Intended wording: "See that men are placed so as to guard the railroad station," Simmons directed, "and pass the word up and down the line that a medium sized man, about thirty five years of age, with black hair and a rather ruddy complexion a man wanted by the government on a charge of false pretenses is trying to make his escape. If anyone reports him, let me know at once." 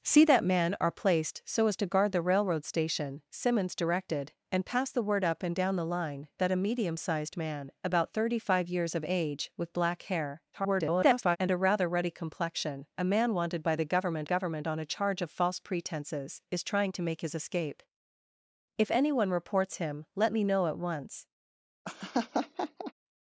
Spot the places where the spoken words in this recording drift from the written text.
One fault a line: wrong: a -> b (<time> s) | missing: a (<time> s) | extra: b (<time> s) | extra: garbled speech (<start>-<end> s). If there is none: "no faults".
extra: garbled speech (10.5-11.4 s)
extra: government (14.2 s)